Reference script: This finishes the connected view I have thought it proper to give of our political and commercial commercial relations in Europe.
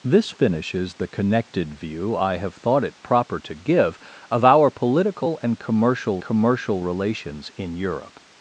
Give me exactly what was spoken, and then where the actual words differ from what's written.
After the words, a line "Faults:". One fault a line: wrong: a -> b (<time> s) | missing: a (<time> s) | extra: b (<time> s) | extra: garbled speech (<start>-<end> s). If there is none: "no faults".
This finishes the connected view I have thought it proper to give of our political and commercial commercial relations in Europe.
Faults:
no faults